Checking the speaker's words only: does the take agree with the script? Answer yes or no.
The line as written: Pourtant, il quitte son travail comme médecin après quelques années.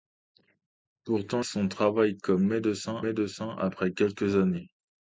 no